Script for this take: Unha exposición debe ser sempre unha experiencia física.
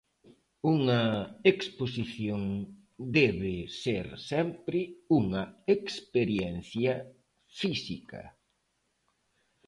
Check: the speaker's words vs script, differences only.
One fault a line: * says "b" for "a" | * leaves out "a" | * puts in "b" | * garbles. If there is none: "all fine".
all fine